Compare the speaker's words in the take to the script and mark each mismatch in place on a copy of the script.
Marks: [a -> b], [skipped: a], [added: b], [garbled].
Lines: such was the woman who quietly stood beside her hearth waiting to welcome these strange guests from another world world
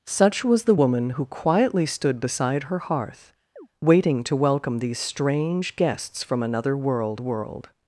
such was the woman who quietly stood beside her hearth waiting to welcome these strange guests from another world world